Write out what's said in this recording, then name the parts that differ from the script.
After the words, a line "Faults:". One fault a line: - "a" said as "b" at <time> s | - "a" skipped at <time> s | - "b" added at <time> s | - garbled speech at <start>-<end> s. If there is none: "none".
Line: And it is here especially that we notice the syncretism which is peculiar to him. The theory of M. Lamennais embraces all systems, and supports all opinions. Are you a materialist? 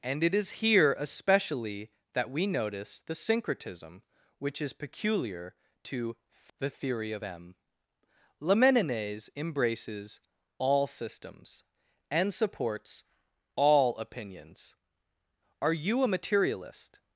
And it is here especially that we notice the syncretism which is peculiar to. The theory of M. Lamennais embraces all systems, and supports all opinions. Are you a materialist?
Faults:
- "him" skipped at 6.2 s